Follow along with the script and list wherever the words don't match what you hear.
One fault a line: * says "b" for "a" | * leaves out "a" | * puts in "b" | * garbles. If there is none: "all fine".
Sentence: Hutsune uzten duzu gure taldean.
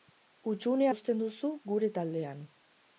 all fine